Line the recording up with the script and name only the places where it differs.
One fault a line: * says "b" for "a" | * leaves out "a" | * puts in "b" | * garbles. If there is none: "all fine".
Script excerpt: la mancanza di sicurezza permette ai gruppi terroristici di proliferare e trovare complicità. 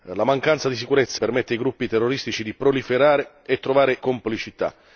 all fine